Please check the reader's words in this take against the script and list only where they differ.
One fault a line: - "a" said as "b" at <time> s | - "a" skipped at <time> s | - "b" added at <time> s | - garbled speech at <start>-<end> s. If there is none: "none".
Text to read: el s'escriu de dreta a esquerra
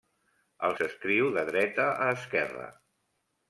none